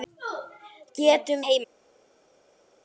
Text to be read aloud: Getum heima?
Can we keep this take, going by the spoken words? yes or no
yes